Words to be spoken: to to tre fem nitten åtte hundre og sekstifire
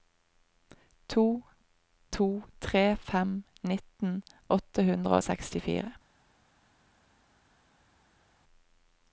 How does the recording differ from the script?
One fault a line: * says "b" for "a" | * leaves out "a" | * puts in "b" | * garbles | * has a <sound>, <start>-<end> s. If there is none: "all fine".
all fine